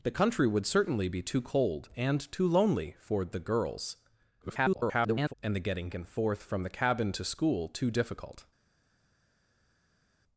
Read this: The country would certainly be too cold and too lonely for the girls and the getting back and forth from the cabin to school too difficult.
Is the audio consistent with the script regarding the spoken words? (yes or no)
no